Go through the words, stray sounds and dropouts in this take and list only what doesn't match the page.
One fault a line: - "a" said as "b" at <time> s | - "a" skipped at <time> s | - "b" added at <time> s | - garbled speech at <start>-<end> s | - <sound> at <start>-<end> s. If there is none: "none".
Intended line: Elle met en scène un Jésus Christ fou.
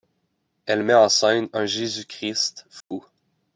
- dropout at 2.8-2.9 s